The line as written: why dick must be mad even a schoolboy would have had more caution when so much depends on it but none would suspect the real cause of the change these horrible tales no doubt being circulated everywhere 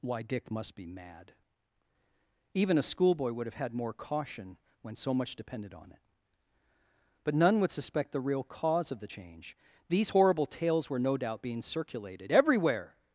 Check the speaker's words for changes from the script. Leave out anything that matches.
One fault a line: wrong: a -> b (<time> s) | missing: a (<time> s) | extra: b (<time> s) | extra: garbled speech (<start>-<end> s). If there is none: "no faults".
wrong: depends -> depended (5.3 s)
extra: were (10.9 s)